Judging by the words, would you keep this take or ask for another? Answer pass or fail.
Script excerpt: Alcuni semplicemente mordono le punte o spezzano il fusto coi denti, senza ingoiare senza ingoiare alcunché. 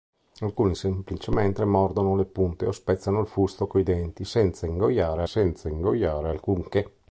pass